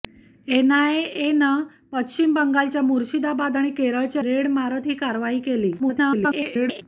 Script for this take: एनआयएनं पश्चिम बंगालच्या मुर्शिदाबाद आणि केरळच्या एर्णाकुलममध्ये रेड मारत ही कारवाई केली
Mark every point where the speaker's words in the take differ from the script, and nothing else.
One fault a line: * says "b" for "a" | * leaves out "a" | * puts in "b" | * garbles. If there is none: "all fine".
* leaves out "एर्णाकुलममध्ये"
* garbles